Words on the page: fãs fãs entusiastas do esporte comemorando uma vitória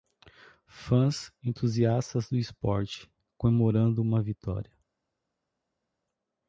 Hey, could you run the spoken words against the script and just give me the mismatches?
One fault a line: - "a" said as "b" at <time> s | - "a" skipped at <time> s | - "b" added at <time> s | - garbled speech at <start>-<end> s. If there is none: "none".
- "fãs" skipped at 1.3 s